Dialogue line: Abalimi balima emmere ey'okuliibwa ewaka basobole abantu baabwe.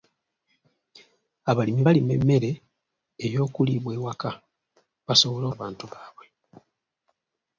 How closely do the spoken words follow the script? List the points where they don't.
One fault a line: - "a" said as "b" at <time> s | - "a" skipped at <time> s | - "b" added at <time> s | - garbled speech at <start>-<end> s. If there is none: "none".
none